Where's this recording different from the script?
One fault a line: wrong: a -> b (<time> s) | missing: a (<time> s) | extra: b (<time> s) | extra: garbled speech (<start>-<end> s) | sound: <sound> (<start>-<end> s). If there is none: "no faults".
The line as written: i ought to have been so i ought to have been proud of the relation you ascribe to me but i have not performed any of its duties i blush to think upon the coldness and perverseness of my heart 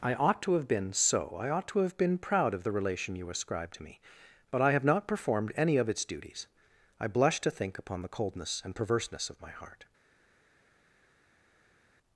no faults